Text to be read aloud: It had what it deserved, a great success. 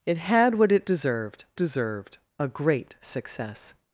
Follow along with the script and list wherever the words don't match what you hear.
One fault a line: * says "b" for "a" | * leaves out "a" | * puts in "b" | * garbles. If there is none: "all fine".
* puts in "deserved"